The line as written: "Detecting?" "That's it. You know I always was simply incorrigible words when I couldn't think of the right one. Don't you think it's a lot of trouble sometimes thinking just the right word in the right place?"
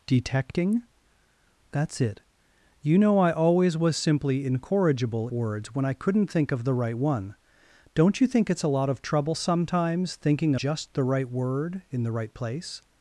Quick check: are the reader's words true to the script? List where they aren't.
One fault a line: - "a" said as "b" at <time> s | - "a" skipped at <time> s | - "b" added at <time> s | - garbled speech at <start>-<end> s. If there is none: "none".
none